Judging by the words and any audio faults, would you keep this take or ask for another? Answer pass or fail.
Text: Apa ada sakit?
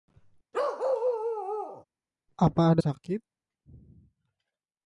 fail